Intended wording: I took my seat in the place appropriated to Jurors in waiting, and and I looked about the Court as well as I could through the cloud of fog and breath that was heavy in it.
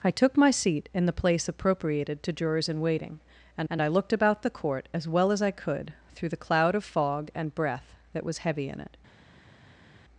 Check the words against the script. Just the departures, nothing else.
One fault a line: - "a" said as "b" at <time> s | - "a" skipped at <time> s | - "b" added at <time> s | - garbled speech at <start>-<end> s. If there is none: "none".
none